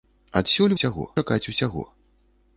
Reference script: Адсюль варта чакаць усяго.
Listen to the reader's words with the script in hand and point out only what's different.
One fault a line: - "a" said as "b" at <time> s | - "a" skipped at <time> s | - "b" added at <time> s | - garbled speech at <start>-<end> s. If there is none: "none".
- "варта" said as "усяго" at 0.8 s